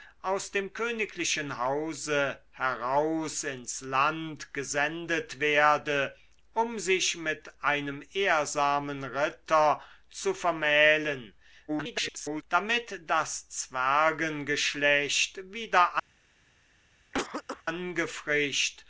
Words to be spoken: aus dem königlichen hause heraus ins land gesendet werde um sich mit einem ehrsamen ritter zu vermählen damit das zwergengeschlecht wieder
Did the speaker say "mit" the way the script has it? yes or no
yes